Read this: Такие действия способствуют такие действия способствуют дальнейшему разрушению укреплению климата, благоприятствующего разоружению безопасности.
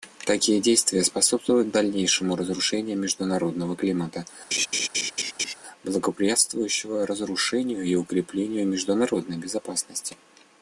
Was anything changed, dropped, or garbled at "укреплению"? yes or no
yes